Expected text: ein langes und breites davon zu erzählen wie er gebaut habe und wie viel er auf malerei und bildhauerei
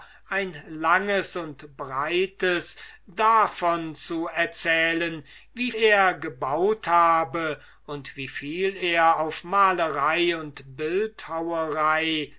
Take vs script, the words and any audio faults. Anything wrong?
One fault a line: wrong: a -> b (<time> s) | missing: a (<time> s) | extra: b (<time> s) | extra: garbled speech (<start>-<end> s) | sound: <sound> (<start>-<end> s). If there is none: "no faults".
no faults